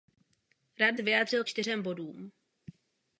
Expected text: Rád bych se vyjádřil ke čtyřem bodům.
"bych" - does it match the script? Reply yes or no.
no